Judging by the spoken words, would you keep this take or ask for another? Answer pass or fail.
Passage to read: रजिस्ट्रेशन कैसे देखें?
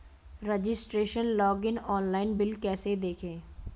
fail